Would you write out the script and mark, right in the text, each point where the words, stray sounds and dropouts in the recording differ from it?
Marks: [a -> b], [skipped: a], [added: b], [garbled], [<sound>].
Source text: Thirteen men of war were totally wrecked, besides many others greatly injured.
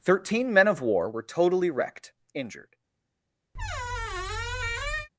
Thirteen men of war were totally wrecked, [skipped: besides many others greatly] injured. [squeak]